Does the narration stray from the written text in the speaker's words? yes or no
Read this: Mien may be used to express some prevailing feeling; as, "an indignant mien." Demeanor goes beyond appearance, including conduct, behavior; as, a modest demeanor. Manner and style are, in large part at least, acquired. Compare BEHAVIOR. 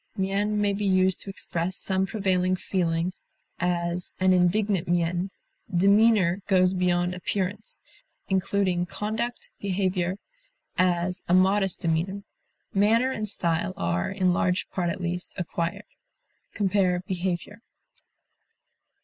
no